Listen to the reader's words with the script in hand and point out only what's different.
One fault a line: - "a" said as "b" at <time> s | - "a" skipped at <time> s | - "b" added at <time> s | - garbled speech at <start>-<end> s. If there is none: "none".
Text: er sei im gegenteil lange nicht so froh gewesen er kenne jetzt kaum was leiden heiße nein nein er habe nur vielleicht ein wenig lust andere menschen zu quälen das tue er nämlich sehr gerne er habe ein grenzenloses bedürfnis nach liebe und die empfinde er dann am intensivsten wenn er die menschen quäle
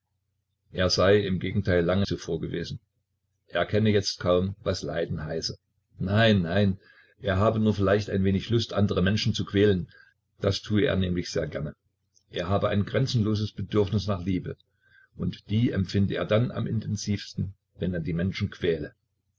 - "nicht" skipped at 2.1 s